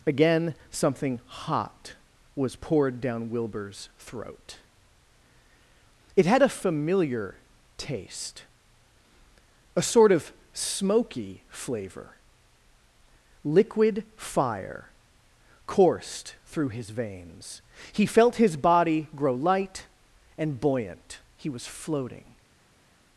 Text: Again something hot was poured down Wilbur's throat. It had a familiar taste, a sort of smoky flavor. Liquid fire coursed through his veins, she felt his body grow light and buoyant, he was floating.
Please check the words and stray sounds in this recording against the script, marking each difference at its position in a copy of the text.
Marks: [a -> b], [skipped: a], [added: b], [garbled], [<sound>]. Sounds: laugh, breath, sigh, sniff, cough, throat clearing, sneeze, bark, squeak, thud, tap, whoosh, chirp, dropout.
Again something hot was poured down Wilbur's throat. It had a familiar taste, a sort of smoky flavor. Liquid fire coursed through his veins, [she -> he] felt his body grow light and buoyant, he was floating.